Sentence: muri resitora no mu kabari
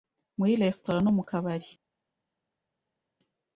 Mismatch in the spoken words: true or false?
false